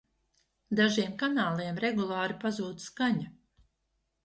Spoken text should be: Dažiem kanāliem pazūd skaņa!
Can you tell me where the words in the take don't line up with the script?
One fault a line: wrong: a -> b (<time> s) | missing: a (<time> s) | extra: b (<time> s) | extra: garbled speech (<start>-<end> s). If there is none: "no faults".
extra: regulāri (1.9 s)